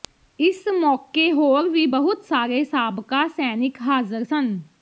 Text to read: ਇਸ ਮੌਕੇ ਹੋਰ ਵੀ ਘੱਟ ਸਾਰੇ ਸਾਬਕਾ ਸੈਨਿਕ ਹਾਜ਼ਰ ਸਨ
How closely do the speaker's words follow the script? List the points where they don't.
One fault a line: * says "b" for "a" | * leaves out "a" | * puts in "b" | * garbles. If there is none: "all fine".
* says "ਬਹੁਤ" for "ਘੱਟ"